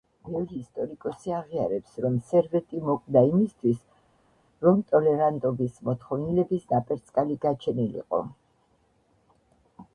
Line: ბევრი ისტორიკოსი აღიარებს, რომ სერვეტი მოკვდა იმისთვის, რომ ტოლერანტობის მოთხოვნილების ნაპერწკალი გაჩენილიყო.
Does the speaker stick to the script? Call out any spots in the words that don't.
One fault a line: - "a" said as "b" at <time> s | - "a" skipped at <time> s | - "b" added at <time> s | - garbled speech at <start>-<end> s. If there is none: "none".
none